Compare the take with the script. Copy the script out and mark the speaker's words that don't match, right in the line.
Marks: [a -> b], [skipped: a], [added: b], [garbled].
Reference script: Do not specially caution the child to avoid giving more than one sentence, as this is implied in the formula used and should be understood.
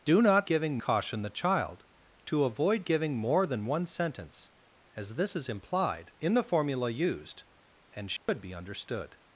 Do not [specially -> giving] caution the child to avoid giving more than one sentence, as this is implied in the formula used and should be understood.